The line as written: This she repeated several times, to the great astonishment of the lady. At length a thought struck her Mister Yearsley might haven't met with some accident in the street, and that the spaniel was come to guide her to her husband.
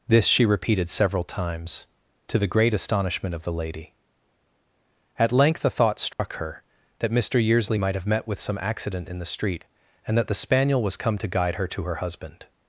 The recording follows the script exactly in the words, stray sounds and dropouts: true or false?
false